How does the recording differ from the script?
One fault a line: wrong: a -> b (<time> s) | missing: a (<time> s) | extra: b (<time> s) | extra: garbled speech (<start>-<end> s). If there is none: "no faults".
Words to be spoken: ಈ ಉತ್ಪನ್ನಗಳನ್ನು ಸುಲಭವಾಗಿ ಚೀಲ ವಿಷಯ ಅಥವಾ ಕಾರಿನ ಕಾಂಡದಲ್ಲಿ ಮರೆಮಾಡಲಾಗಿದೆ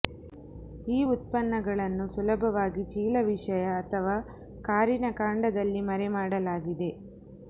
no faults